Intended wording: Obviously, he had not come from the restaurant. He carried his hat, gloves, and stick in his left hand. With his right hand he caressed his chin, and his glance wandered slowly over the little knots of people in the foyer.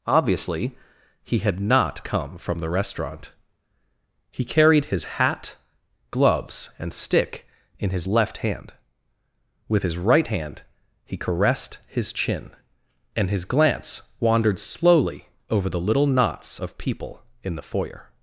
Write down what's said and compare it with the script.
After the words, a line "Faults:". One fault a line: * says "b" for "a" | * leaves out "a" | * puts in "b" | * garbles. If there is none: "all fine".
Obviously, he had not come from the restaurant. He carried his hat, gloves, and stick in his left hand. With his right hand he caressed his chin, and his glance wandered slowly over the little knots of people in the foyer.
Faults:
all fine